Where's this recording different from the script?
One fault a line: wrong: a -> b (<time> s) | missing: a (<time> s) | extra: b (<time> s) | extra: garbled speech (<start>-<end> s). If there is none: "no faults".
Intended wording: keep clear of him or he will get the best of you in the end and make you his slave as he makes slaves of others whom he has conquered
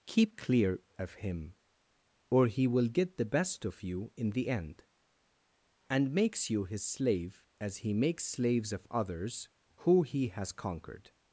wrong: make -> makes (6.1 s)
wrong: whom -> who (9.8 s)